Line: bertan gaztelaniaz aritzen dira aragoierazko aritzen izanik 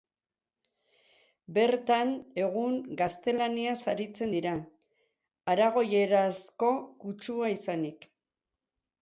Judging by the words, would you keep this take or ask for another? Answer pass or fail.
fail